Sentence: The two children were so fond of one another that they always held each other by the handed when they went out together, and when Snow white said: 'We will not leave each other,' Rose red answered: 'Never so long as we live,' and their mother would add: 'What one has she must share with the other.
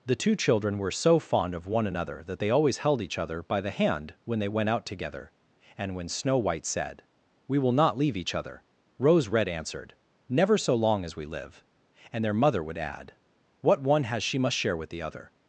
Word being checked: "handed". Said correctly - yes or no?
no